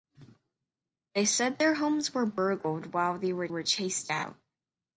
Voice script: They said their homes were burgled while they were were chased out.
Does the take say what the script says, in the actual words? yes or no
yes